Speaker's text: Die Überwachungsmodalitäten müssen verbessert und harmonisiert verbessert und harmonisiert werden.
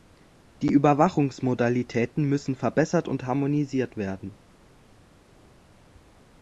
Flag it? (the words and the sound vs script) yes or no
yes